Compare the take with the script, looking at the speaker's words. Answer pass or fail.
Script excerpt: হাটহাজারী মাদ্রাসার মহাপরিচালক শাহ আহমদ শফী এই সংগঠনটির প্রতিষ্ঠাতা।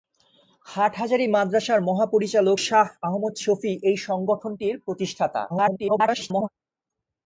fail